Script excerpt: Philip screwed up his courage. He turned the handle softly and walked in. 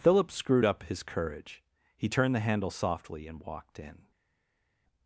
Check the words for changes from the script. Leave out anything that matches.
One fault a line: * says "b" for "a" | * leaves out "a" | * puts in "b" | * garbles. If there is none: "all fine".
all fine